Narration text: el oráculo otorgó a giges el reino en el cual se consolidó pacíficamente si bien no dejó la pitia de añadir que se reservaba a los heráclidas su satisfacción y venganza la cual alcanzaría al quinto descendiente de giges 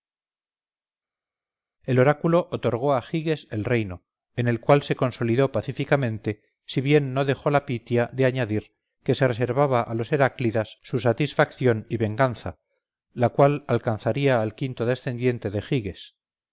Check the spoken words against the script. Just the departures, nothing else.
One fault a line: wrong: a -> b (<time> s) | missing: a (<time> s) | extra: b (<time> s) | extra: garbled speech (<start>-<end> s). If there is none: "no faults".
no faults